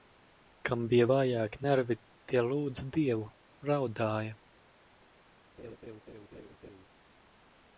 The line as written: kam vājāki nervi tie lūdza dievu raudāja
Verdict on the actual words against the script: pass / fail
fail